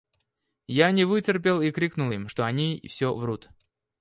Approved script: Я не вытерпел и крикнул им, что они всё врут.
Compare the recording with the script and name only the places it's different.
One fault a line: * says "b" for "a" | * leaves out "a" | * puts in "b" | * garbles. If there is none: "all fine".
all fine